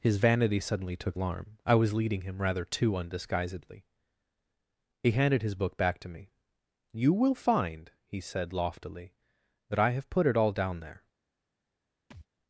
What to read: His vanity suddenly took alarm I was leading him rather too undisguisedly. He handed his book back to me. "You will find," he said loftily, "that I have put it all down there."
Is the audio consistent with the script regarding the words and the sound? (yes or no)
no